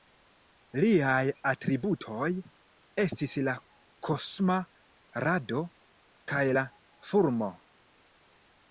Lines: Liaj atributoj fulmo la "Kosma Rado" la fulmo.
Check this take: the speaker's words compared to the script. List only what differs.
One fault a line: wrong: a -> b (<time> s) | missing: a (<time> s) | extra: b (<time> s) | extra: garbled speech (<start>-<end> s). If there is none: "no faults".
wrong: fulmo -> estis (3.0 s)
extra: kaj (6.3 s)